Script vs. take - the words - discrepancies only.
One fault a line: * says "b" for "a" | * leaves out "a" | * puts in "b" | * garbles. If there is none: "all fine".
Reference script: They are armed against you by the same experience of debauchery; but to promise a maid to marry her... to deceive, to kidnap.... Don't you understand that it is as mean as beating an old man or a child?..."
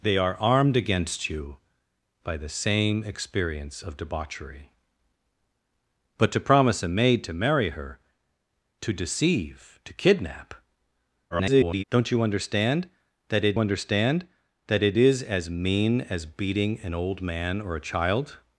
* garbles
* puts in "understand that it"